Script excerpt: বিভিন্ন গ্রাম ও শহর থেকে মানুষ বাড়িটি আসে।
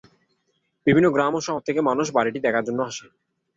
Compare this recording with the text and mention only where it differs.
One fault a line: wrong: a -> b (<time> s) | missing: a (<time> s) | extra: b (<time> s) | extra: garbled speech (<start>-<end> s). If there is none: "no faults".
extra: দেখার জন্য (2.4 s)